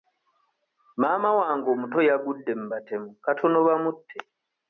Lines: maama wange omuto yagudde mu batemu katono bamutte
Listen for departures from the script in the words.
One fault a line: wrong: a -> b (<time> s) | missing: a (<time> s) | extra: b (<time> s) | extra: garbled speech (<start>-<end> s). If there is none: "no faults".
no faults